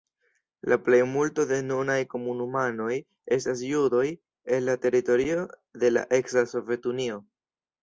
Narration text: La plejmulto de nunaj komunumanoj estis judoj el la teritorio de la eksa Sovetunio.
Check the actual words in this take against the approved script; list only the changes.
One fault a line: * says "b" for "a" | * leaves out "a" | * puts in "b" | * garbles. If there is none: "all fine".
* says "estas" for "estis"